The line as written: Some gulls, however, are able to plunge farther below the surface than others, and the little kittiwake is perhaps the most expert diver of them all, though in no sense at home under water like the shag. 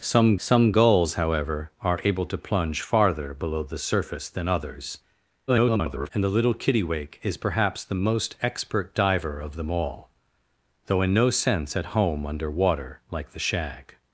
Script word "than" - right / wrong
right